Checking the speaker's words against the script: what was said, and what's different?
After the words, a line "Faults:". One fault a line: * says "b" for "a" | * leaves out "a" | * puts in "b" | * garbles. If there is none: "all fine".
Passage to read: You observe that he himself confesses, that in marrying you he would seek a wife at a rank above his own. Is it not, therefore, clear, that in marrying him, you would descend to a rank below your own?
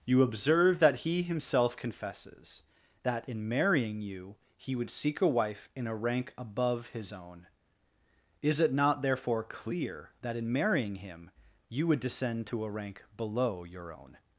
You observe that he himself confesses, that in marrying you he would seek a wife in a rank above his own. Is it not, therefore, clear, that in marrying him, you would descend to a rank below your own?
Faults:
* says "in" for "at"